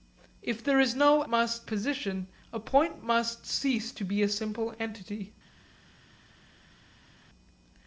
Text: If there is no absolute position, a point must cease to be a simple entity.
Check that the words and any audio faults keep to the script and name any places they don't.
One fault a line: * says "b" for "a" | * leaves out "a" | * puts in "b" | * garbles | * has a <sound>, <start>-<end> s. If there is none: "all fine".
* says "must" for "absolute"